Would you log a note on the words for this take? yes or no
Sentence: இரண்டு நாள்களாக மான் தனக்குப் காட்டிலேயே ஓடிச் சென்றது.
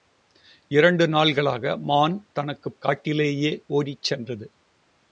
no